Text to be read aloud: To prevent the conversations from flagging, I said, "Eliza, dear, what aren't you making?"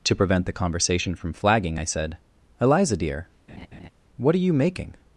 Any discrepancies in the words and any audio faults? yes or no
yes